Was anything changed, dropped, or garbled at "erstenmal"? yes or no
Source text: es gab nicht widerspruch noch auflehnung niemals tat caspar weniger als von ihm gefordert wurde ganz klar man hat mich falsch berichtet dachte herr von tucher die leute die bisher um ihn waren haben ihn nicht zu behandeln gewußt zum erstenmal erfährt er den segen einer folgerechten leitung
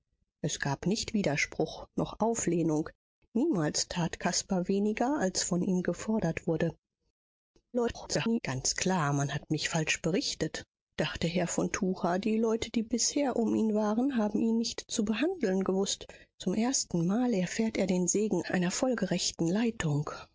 no